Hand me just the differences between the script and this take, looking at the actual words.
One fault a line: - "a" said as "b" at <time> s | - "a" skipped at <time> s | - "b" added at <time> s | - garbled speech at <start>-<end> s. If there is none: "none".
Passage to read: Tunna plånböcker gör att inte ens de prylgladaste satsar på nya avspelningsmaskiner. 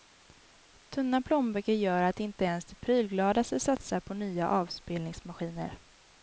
none